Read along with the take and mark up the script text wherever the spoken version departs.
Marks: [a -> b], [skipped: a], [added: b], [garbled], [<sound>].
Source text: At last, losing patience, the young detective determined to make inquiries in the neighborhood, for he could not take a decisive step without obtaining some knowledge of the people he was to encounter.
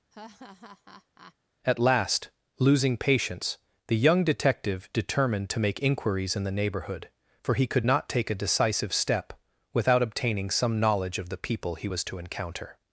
[laugh] At last, losing patience, the young detective determined to make inquiries in the neighborhood, for he could not take a decisive step without obtaining some knowledge of the people he was to encounter.